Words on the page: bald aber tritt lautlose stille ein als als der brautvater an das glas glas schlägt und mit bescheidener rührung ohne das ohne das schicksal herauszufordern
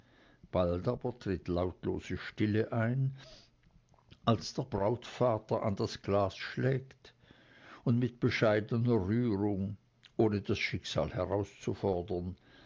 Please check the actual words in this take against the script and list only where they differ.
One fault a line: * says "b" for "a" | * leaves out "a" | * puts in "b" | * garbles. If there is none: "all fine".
* leaves out "als"
* leaves out "glas"
* leaves out "ohne das"